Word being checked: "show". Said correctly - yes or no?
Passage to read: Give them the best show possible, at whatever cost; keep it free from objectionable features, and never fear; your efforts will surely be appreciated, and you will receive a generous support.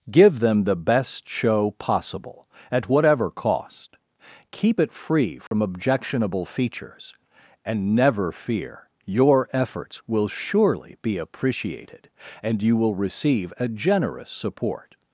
yes